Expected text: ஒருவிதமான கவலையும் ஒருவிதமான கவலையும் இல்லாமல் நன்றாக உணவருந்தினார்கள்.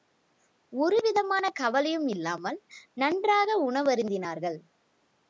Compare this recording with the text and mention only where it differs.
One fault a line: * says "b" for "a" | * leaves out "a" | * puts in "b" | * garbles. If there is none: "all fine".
* leaves out "ஒருவிதமான கவலையும்"